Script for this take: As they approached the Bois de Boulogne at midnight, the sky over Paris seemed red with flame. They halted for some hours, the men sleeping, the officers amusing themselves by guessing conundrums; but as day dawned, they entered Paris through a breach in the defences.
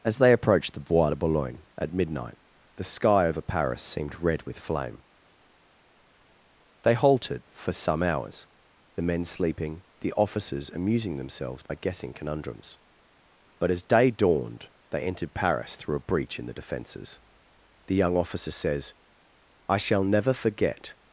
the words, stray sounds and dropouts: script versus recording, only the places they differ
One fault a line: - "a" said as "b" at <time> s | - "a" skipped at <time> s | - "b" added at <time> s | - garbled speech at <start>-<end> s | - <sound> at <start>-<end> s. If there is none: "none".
- dropout at 11.7-11.7 s
- "The young officer says I shall never forget" added at 17.9 s